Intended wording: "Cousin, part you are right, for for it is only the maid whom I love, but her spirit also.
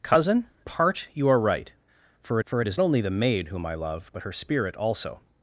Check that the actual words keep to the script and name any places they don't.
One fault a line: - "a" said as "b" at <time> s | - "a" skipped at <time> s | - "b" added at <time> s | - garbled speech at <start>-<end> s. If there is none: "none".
none